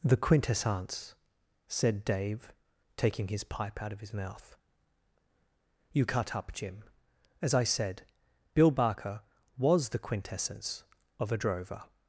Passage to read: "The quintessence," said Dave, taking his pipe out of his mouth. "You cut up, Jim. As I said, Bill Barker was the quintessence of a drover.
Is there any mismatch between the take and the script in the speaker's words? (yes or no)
no